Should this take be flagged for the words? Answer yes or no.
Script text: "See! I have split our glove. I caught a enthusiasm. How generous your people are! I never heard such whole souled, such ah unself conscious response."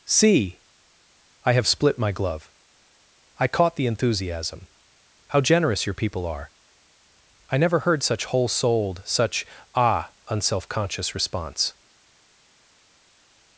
yes